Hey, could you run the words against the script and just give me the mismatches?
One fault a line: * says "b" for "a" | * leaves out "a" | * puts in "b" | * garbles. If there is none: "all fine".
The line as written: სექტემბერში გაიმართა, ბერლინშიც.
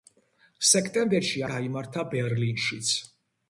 all fine